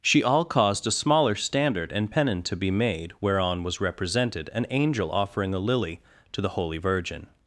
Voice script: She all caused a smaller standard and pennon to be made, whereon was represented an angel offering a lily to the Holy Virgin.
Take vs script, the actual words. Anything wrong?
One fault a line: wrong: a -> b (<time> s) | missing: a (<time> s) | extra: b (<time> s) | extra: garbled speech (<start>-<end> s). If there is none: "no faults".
no faults